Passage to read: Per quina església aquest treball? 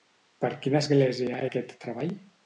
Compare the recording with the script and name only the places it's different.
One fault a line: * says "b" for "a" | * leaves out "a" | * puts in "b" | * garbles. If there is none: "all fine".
all fine